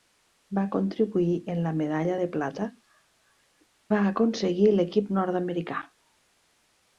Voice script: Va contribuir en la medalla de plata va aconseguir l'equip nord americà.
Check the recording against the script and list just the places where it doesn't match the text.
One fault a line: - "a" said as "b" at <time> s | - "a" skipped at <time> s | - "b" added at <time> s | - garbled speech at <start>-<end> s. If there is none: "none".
none